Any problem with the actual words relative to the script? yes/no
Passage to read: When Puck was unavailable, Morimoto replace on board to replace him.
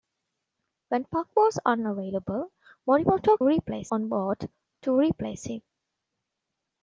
no